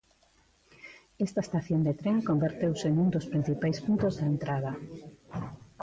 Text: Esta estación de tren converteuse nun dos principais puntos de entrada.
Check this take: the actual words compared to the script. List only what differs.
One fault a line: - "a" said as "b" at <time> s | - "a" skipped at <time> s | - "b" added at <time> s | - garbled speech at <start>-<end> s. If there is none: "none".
none